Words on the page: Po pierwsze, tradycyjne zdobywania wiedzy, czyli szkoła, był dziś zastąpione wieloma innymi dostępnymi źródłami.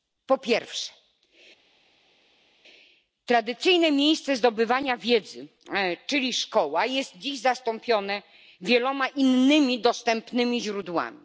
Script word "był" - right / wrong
wrong